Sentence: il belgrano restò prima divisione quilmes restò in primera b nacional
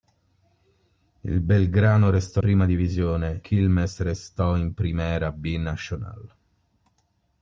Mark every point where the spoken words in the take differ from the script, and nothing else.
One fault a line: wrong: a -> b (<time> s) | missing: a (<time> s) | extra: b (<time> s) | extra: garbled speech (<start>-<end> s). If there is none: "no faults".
no faults